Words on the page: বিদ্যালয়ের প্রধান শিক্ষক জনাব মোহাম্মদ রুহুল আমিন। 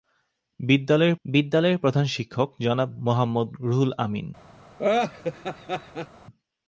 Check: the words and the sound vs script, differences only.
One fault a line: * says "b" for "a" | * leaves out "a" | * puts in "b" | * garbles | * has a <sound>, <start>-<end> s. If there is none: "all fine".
* puts in "বিদ্যালয়ের"
* has a laugh, 4.8-6.1 s